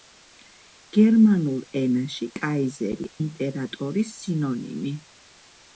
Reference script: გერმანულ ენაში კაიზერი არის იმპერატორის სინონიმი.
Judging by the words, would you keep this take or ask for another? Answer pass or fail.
fail